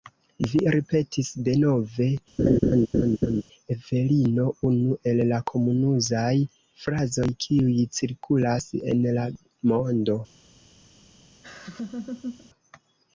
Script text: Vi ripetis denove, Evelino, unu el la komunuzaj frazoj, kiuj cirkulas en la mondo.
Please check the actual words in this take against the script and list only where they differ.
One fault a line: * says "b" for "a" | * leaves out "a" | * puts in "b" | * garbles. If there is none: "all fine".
all fine